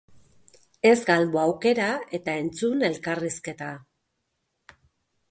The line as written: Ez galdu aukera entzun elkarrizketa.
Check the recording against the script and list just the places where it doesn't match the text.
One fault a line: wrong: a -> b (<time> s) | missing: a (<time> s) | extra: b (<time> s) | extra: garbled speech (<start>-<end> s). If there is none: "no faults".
extra: eta (2.2 s)